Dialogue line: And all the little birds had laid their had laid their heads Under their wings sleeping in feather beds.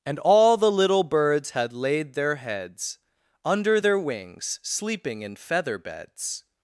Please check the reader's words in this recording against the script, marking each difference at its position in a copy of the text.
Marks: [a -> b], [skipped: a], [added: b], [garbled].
And all the little birds had laid their [skipped: had laid their] heads Under their wings sleeping in feather beds.